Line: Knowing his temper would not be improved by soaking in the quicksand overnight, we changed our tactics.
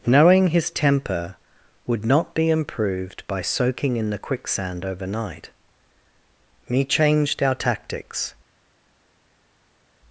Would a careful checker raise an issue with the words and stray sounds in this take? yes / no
yes